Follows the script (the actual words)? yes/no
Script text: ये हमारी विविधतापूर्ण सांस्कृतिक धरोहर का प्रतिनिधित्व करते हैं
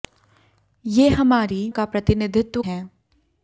no